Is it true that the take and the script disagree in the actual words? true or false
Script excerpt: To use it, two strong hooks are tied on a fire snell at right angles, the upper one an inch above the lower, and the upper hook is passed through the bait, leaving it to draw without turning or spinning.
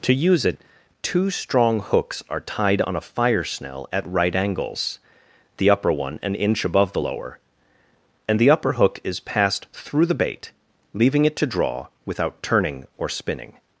false